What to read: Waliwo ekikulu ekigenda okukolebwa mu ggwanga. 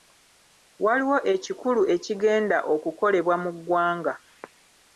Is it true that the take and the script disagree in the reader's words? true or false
false